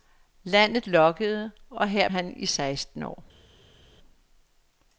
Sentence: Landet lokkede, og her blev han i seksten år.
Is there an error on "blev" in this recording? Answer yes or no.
yes